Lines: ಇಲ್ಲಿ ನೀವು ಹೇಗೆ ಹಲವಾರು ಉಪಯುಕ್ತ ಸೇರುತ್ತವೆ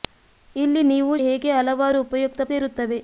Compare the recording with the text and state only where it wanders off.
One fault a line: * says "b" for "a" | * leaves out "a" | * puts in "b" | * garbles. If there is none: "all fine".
all fine